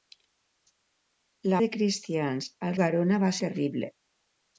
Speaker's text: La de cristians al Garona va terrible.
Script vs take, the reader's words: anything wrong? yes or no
no